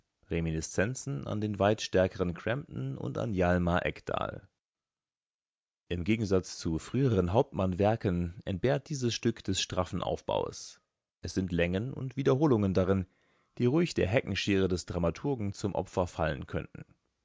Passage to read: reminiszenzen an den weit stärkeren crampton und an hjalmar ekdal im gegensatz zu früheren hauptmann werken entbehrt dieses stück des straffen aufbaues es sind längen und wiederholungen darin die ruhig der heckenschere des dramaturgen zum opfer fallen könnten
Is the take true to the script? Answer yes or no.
yes